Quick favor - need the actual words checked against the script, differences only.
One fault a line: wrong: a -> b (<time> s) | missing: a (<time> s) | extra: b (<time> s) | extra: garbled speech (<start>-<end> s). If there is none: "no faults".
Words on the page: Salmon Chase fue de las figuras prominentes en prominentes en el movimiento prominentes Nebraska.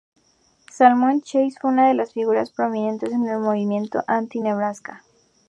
extra: una (1.7 s)
missing: prominentes en (3.3 s)
wrong: prominentes -> anti (4.1 s)